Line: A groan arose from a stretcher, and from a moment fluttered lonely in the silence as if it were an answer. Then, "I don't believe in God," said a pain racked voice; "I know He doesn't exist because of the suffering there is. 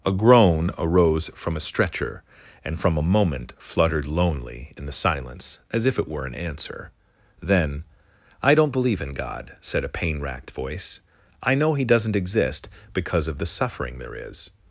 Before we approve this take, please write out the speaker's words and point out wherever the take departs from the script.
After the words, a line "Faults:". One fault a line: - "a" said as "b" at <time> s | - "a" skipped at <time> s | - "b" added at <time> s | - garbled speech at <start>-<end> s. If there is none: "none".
A groan arose from a stretcher, and from a moment fluttered lonely in the silence as if it were an answer. Then, "I don't believe in God," said a pain racked voice; "I know He doesn't exist because of the suffering there is.
Faults:
none